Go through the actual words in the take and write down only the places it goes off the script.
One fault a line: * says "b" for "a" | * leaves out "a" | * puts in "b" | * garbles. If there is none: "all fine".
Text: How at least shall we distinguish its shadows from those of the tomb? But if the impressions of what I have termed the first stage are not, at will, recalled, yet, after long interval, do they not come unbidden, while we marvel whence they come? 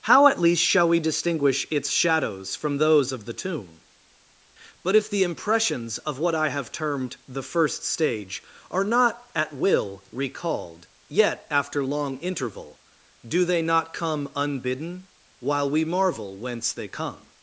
all fine